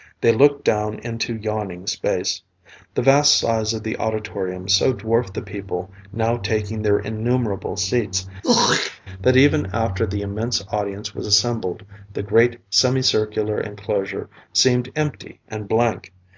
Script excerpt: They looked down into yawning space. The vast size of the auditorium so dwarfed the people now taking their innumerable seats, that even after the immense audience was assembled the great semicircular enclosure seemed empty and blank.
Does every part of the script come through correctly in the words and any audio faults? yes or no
no